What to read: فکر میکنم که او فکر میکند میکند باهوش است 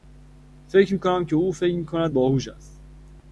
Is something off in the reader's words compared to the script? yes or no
yes